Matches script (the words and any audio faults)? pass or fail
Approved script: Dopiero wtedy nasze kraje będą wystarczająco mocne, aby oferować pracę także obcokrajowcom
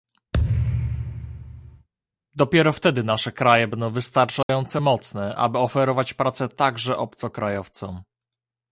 fail